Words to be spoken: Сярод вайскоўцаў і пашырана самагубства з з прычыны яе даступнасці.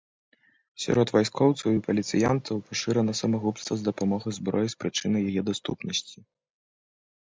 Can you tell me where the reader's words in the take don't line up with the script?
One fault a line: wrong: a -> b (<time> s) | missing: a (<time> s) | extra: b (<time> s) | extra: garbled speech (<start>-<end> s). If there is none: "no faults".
extra: паліцыянтаў (1.9 s)
extra: дапамогай зброі (3.9 s)